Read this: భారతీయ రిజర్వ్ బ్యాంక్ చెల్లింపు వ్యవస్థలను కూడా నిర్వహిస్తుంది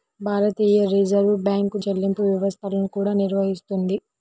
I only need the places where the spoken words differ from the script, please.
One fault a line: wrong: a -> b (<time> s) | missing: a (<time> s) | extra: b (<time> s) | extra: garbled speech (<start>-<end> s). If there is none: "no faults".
no faults